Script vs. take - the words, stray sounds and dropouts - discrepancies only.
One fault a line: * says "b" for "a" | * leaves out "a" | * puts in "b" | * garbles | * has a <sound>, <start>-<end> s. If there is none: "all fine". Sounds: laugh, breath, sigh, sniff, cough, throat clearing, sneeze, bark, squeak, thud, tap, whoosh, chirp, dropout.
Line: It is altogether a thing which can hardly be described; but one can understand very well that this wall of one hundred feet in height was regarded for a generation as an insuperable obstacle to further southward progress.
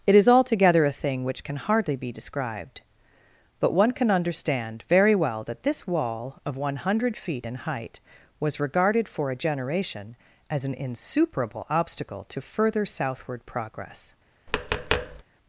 * has a tap, 14.5-15.2 s